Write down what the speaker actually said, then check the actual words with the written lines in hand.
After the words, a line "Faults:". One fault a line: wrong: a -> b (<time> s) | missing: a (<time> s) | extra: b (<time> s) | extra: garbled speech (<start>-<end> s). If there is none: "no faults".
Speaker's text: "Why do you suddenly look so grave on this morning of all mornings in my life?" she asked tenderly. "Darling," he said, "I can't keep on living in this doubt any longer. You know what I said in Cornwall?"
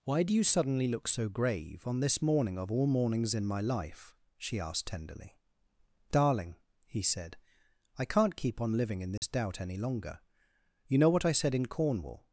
"Why do you suddenly look so grave on this morning of all mornings in my life?" she asked tenderly. "Darling," he said, "I can't keep on living in this doubt any longer. You know what I said in Cornwall?"
Faults:
no faults